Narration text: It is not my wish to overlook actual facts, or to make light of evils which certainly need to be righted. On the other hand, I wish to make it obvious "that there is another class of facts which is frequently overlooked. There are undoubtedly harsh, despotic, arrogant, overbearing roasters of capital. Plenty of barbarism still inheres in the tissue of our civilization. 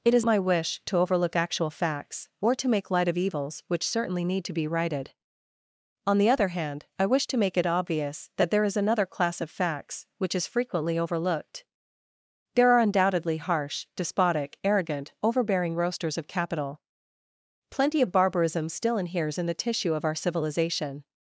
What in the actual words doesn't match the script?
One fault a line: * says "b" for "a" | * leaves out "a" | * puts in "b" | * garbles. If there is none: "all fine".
* leaves out "not"